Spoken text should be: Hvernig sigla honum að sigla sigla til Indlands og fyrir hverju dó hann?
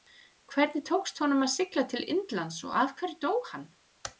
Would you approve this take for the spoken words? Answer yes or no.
no